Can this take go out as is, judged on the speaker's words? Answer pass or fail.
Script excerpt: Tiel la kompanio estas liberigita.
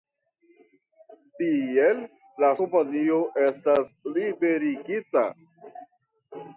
pass